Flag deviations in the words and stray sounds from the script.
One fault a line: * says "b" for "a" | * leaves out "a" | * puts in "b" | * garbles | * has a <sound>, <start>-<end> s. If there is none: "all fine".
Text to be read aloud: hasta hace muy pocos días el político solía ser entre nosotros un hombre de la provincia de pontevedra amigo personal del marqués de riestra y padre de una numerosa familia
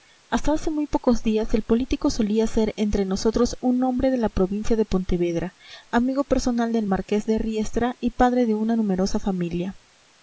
all fine